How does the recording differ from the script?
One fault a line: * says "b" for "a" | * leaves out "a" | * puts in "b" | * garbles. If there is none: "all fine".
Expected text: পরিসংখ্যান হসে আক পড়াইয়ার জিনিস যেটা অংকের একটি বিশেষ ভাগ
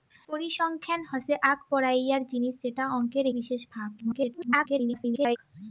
* leaves out "একটি"
* garbles